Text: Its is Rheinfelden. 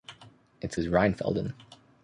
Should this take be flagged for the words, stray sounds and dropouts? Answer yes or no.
no